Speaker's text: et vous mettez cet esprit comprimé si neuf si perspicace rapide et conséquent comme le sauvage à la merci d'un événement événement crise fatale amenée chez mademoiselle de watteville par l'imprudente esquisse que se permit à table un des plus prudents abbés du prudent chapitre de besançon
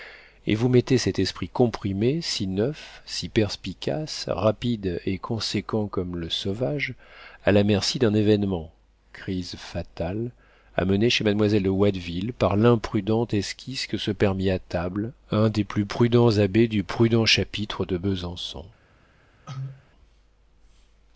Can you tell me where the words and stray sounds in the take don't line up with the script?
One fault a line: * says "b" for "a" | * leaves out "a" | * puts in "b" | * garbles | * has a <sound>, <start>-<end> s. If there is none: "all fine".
* leaves out "événement"
* has a cough, 19.5-19.9 s